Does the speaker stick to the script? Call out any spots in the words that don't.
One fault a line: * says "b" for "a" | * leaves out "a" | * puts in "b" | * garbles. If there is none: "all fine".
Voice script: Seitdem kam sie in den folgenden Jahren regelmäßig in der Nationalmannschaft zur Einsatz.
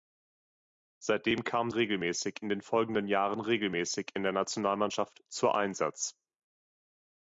* says "regelmäßig" for "sie"